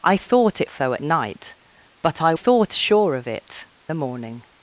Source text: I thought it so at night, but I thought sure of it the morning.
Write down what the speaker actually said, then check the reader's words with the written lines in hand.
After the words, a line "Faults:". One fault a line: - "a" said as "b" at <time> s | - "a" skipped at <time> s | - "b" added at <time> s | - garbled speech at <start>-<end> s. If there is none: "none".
I thought it so at night, but I thought sure of it the morning.
Faults:
none